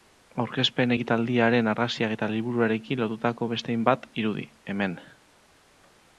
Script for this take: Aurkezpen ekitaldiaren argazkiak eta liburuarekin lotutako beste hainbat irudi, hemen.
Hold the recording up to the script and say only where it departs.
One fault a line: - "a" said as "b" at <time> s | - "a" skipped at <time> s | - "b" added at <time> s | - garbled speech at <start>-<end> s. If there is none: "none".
none